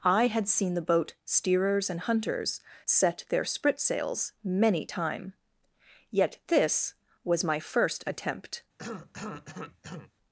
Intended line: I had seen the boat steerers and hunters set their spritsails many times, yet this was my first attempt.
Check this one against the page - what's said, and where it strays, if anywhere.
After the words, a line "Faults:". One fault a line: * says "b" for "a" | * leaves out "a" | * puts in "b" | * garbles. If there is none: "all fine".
I had seen the boat steerers and hunters set their spritsails many time, yet this was my first attempt.
Faults:
* says "time" for "times"